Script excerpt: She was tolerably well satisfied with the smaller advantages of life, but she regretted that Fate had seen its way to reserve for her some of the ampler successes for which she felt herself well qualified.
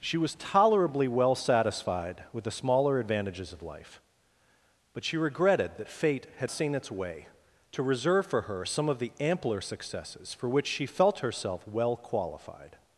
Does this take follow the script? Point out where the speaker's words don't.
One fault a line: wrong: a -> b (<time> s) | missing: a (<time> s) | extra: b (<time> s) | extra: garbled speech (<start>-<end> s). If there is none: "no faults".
no faults